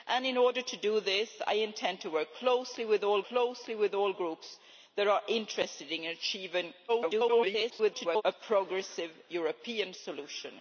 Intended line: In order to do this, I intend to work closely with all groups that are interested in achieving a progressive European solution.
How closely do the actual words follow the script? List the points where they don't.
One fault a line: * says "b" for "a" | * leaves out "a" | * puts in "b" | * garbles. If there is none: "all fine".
* puts in "closely with all"
* garbles